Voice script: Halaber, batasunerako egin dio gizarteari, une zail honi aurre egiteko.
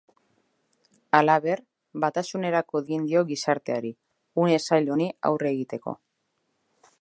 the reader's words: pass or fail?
pass